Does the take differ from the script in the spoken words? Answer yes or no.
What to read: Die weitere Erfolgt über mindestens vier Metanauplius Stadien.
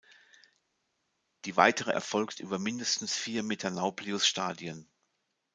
no